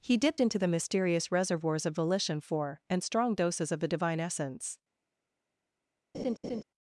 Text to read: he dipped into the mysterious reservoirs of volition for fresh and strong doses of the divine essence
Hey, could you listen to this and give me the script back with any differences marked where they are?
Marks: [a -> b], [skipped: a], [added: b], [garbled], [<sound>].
he dipped into the mysterious reservoirs of volition for [skipped: fresh] and strong doses of the divine essence [laugh]